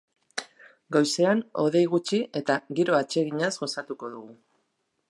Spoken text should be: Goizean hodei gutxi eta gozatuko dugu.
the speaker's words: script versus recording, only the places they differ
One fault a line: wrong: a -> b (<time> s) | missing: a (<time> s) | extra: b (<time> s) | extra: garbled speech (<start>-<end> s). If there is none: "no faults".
extra: giro atseginaz (2.8 s)